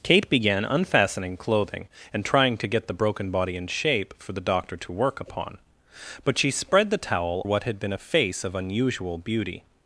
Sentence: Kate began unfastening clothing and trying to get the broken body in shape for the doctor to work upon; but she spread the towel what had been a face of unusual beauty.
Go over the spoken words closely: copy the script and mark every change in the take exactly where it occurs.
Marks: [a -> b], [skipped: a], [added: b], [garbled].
Kate began unfastening clothing and trying to get the broken body in shape for the doctor to work upon; but she spread the towel what had been a face of unusual beauty.